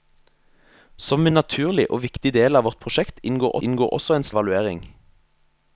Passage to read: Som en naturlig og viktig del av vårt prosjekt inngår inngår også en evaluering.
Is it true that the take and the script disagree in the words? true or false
false